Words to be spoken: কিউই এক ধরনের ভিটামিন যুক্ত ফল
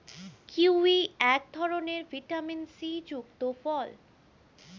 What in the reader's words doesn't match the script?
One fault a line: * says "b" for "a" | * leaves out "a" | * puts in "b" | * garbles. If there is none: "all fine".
* puts in "সি"